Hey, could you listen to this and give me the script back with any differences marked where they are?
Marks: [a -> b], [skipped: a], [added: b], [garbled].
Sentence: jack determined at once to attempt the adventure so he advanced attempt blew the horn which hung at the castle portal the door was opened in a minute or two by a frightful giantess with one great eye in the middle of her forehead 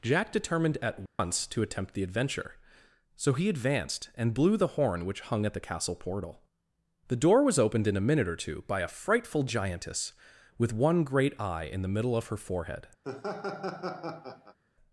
jack determined at once to attempt the adventure so he advanced [attempt -> and] blew the horn which hung at the castle portal the door was opened in a minute or two by a frightful giantess with one great eye in the middle of her forehead